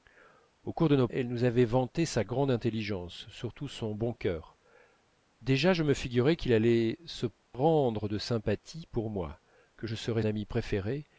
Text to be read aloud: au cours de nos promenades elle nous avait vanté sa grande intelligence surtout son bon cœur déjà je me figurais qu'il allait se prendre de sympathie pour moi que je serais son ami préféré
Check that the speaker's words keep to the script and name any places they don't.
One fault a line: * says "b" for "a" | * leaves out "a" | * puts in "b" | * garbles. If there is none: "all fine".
* leaves out "promenades"
* leaves out "son"